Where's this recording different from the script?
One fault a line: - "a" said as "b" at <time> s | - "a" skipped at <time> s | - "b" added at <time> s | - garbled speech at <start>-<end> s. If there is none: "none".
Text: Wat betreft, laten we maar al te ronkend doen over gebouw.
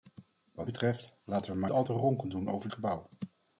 none